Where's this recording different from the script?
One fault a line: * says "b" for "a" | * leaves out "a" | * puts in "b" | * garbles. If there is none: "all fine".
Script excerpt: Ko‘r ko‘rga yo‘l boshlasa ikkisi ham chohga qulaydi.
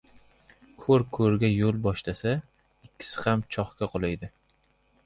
all fine